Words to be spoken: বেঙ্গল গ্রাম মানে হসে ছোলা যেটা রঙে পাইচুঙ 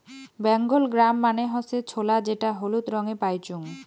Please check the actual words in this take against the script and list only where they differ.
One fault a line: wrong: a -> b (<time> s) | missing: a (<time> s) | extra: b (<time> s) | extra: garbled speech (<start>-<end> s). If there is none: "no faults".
extra: হলুদ (2.6 s)